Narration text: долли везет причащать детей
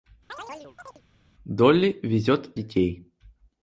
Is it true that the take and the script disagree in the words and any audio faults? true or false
true